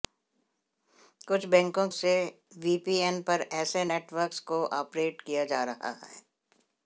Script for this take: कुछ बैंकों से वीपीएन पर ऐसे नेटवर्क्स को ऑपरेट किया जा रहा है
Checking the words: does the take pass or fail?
pass